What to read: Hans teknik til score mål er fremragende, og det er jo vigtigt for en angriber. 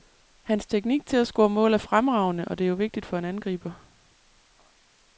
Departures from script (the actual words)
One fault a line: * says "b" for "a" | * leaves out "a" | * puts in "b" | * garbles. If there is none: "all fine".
* puts in "at"